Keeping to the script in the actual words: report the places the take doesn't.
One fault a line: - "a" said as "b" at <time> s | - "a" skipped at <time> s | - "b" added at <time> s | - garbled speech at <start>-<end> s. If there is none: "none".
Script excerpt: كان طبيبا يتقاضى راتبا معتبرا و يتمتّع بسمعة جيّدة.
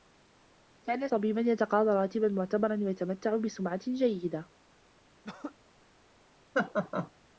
none